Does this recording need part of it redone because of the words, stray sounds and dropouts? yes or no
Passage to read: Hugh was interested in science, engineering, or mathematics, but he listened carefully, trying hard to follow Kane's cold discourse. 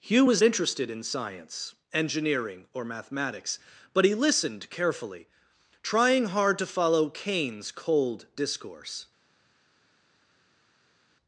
no